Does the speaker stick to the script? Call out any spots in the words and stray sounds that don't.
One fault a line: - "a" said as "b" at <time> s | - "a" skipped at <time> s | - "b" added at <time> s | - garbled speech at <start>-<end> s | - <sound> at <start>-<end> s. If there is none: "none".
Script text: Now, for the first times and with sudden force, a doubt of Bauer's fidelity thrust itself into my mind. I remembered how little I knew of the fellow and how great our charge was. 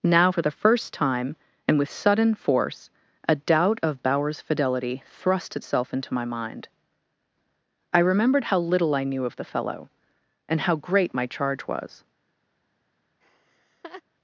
- "times" said as "time" at 0.9 s
- "our" said as "my" at 11.1 s
- laugh at 13.2-14.0 s